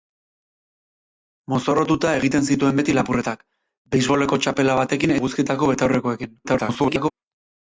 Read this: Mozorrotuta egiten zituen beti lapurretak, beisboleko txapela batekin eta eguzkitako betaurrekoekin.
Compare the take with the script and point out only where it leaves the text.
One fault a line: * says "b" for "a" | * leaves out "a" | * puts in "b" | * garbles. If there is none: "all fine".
* leaves out "eta"
* garbles